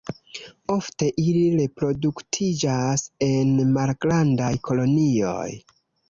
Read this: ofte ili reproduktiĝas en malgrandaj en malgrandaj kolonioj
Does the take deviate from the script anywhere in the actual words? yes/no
yes